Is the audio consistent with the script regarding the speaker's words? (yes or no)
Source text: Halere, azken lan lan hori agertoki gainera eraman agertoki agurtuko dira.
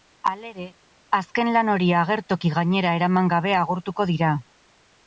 no